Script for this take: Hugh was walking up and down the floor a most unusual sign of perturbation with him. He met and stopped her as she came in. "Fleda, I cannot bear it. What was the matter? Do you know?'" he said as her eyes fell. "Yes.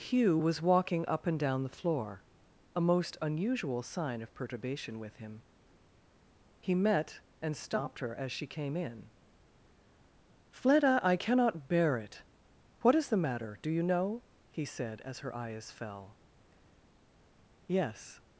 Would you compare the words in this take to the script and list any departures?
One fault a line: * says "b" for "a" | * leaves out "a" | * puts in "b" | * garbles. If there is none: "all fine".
* says "is" for "was"